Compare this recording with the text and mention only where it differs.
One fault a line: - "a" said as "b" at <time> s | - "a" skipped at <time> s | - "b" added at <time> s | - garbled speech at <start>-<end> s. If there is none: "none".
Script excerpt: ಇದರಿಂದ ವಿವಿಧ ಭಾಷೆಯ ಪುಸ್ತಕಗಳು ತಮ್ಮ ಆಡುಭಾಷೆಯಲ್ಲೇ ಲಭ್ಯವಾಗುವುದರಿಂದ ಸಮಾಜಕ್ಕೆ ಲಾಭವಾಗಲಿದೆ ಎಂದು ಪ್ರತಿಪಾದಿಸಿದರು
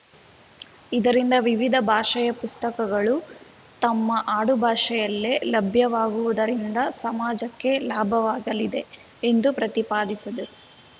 none